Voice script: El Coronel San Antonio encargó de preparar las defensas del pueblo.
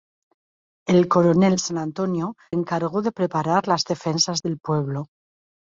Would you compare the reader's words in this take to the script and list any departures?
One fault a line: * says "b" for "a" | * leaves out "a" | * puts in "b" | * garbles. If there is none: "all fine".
all fine